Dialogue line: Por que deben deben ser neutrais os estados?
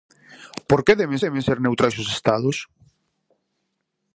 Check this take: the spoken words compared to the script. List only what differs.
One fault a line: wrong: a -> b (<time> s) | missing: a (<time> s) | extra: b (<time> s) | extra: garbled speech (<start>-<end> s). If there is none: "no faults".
no faults